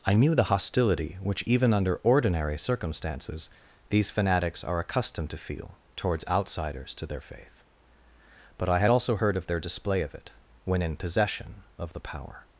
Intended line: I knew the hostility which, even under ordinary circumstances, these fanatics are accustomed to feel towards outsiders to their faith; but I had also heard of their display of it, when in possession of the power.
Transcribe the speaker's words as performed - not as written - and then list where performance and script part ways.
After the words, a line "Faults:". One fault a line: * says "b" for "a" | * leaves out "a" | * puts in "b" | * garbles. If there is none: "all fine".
I knew the hostility which, even under ordinary circumstances, these fanatics are accustomed to feel towards outsiders to their faith; but I had also heard of their display of it, when in possession of the power.
Faults:
all fine